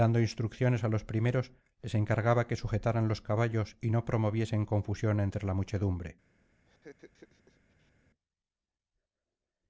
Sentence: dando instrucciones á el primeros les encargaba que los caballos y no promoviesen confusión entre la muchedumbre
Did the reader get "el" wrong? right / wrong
wrong